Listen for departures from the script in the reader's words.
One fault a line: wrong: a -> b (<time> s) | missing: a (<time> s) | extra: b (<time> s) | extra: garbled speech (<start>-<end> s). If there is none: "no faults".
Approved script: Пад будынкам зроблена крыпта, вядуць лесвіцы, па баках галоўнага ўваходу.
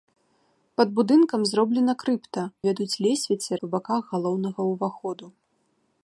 no faults